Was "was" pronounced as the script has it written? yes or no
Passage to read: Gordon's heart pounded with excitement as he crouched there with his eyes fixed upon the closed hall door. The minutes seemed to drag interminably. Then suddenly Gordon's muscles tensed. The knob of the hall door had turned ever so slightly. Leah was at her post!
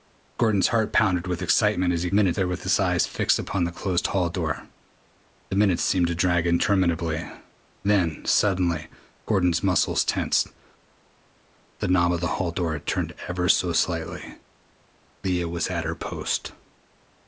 yes